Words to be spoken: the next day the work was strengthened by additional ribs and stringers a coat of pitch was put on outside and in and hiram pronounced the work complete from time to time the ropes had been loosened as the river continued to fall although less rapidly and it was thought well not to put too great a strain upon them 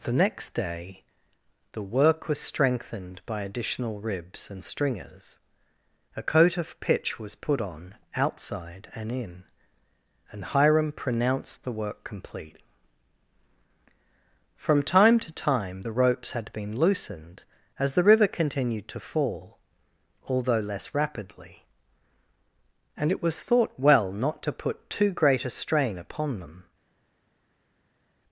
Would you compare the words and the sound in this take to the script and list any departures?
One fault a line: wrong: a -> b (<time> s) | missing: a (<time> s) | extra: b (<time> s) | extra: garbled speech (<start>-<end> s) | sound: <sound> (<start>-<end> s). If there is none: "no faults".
no faults